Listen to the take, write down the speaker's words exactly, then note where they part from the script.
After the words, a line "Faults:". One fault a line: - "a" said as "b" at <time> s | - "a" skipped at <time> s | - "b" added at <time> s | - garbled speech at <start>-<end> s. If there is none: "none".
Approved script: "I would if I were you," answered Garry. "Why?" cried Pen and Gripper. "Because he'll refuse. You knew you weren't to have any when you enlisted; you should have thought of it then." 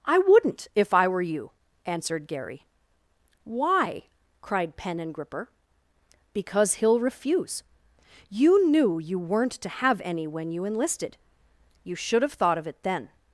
"I wouldn't if I were you," answered Garry. "Why?" cried Pen and Gripper. "Because he'll refuse. You knew you weren't to have any when you enlisted; you should have thought of it then."
Faults:
- "would" said as "wouldn't" at 0.2 s